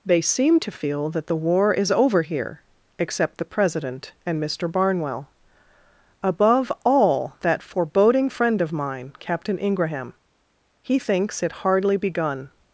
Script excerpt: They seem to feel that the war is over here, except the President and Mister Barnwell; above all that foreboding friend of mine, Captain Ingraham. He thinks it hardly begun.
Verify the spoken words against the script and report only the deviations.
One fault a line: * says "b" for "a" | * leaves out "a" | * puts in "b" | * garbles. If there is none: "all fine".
all fine